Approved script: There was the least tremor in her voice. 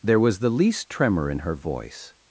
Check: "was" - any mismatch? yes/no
no